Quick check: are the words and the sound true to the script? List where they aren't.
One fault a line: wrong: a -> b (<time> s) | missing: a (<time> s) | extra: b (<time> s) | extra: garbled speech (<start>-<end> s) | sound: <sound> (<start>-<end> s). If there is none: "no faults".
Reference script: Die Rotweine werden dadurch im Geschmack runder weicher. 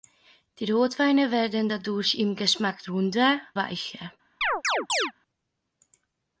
sound: chirp (4.4-5.1 s)